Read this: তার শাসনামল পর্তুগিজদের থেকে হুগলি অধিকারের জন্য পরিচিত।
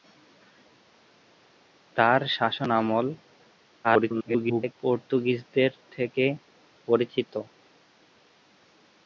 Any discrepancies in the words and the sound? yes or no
yes